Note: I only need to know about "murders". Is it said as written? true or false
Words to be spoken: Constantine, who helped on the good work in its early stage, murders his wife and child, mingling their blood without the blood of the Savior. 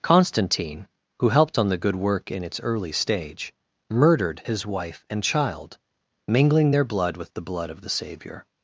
false